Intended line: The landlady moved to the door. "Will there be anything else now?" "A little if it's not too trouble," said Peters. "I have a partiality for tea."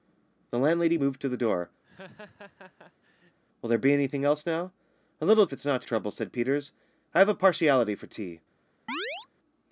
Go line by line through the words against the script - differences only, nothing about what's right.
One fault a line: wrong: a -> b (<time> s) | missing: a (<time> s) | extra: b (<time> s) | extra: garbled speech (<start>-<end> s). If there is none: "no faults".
no faults